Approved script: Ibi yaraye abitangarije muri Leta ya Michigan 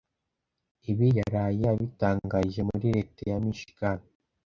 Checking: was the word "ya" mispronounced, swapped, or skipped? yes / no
no